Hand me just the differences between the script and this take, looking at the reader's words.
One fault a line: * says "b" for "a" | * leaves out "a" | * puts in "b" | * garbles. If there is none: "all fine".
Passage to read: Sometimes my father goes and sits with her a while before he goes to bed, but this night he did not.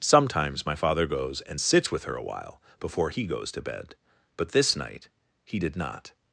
all fine